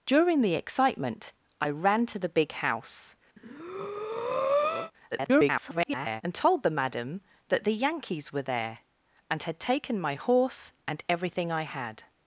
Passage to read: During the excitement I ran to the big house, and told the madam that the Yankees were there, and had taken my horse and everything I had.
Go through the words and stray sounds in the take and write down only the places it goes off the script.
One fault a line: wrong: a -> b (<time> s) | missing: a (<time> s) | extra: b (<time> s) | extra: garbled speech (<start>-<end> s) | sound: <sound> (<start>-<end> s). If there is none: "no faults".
sound: breath (3.4-4.9 s)
extra: garbled speech (5.1-6.2 s)